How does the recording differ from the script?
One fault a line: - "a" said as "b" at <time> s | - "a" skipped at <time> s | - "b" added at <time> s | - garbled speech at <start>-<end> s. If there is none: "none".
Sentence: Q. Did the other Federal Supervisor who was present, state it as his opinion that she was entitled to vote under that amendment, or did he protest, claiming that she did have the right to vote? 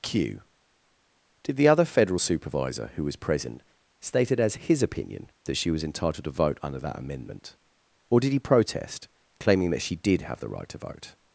none